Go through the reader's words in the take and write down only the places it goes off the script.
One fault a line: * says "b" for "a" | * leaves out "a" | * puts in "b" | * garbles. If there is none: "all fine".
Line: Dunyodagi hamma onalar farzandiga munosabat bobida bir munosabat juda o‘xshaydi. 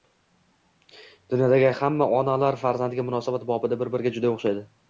* says "biriga" for "munosabat"